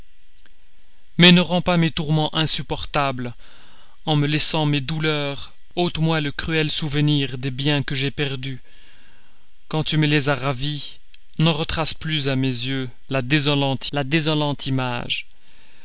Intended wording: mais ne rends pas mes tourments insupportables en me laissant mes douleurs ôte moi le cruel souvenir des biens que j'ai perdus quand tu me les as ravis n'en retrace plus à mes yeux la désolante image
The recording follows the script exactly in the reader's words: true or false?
false